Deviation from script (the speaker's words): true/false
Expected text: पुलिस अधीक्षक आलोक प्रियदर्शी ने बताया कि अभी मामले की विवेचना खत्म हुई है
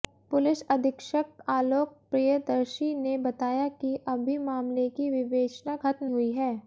false